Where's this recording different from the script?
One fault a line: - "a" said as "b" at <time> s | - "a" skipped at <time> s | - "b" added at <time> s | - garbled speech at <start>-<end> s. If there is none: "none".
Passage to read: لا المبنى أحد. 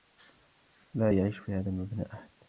- "يعيش في هذا" added at 1.1 s